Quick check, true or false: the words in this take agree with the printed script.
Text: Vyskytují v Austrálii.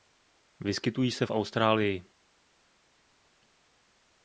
false